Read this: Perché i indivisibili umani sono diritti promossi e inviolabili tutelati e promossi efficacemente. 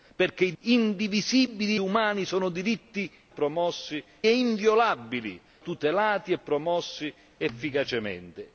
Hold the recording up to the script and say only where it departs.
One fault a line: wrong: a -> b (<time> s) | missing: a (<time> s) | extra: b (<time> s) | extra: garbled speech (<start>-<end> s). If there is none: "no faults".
no faults